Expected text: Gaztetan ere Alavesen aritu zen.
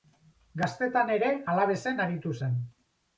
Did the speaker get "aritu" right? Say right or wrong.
right